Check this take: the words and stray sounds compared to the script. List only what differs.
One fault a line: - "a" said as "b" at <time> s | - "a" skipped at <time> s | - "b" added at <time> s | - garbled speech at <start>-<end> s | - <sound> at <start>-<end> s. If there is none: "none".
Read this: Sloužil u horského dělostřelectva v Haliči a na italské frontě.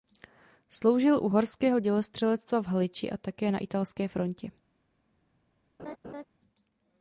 - "také" added at 3.2 s
- laugh at 5.8-6.2 s